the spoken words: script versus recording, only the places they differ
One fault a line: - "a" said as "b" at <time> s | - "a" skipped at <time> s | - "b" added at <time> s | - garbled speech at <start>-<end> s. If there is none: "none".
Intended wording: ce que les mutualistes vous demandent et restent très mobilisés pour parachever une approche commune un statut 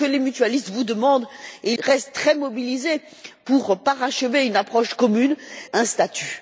none